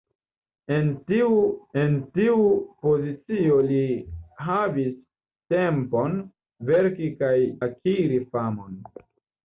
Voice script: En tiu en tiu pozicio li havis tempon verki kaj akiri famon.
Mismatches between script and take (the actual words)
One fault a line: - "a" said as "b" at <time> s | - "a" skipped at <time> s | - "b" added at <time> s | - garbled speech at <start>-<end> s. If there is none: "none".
none